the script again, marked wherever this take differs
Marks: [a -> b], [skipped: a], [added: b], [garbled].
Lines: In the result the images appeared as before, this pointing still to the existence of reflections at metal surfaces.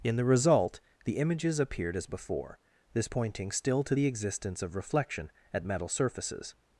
In the result the images appeared as before, this pointing still to the existence of [reflections -> reflection] at metal surfaces.